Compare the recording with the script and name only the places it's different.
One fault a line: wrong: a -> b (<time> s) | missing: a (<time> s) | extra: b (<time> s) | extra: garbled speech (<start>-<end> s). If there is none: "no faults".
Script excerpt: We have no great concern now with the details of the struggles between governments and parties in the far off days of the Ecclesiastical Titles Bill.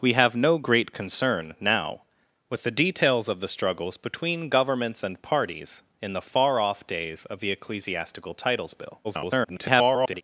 extra: garbled speech (9.0-10.2 s)